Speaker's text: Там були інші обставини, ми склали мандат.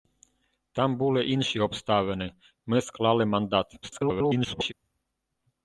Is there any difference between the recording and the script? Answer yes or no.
yes